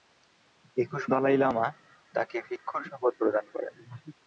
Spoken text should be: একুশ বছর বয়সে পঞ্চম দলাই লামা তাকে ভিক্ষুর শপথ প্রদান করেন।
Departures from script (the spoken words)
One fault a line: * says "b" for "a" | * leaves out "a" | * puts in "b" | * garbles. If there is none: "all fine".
* leaves out "বছর বয়সে পঞ্চম"